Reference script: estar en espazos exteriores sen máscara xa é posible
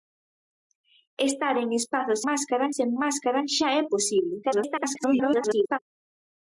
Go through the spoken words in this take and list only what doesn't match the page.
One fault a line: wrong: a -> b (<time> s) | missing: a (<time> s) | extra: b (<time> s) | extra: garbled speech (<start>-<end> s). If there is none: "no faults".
wrong: exteriores -> máscara (2.3 s)
extra: garbled speech (4.4-5.8 s)